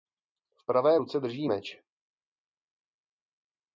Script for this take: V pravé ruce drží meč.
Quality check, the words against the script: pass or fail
pass